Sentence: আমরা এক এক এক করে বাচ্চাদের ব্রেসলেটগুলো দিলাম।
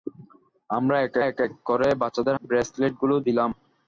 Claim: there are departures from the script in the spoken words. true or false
false